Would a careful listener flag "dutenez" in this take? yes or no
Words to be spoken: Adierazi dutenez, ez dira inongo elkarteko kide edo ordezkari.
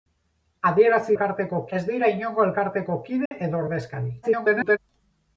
yes